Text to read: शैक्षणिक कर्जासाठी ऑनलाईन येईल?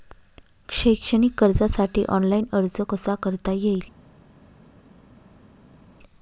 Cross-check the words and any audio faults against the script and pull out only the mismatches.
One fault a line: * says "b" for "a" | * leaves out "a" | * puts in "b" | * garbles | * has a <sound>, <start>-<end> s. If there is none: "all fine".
* puts in "अर्ज कसा करता"